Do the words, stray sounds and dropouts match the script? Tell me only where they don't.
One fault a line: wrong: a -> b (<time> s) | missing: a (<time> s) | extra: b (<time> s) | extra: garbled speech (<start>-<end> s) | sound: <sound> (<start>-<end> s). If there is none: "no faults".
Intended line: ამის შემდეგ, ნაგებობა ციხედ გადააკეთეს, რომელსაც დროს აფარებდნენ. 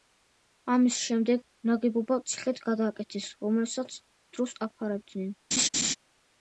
sound: laugh (5.5-6.0 s)